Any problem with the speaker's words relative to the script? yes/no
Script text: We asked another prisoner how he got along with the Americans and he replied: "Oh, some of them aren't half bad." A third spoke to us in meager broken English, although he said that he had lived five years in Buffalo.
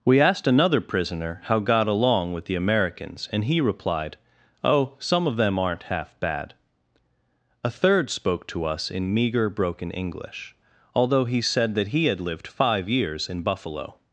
yes